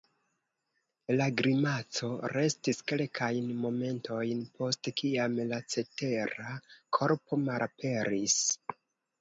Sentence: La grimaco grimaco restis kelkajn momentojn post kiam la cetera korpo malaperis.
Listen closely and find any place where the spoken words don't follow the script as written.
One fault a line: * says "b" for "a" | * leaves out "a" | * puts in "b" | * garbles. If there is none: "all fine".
* leaves out "grimaco"